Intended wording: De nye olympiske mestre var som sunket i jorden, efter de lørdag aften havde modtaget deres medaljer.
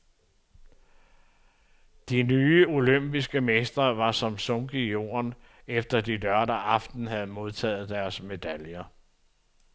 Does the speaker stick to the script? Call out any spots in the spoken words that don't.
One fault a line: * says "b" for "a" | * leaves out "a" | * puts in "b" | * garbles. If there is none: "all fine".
all fine